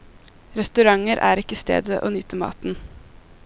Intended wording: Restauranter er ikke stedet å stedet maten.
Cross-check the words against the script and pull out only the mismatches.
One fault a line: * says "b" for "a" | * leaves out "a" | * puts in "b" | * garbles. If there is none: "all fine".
* says "nyte" for "stedet"